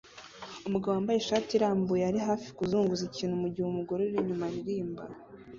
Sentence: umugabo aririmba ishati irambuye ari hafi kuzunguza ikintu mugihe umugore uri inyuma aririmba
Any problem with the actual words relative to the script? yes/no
yes